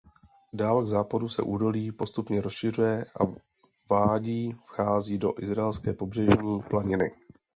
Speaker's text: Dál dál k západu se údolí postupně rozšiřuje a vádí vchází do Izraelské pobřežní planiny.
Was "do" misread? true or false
false